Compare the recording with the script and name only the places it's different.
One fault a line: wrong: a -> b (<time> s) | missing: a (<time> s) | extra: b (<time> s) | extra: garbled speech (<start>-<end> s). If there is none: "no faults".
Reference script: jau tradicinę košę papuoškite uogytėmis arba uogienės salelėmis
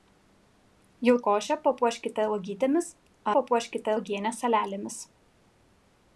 missing: tradicinę (1.1 s)
wrong: arba -> papuoškite (3.4 s)